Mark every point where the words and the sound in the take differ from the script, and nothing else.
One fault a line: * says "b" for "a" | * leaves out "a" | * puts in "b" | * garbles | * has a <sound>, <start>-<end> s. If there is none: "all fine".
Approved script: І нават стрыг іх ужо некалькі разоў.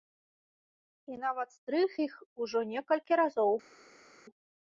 all fine